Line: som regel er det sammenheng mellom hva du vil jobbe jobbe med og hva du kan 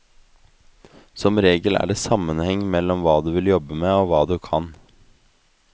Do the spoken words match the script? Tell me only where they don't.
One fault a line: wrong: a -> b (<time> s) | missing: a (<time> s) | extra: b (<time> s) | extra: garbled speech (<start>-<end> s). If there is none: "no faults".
missing: jobbe (3.8 s)